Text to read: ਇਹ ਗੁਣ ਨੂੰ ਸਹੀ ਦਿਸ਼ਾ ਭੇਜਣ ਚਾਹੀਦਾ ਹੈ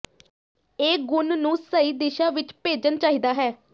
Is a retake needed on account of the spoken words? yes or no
yes